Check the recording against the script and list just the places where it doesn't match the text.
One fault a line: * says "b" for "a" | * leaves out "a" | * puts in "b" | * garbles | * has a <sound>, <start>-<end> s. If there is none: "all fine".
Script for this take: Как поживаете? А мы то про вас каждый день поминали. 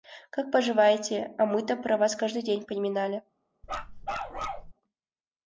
* has a bark, 3.6-4.7 s